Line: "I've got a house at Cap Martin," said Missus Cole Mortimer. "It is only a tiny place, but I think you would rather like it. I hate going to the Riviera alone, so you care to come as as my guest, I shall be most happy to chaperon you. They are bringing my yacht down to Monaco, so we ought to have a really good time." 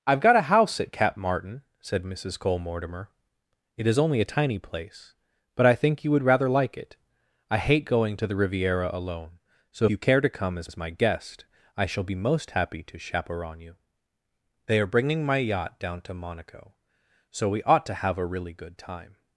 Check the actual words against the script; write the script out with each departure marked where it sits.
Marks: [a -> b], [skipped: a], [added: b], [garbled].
"I've got a house at Cap Martin," said Missus Cole Mortimer. "It is only a tiny place, but I think you would rather like it. I hate going to the Riviera alone, so you care to come as as my guest, I shall be most happy to chaperon you. They are bringing my yacht down to Monaco, so we ought to have a really good time."